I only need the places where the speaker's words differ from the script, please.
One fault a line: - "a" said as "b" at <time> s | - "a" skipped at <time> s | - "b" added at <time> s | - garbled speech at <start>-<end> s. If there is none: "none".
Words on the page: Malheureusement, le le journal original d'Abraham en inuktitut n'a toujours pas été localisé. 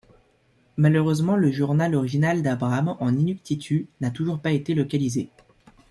- "le" skipped at 1.5 s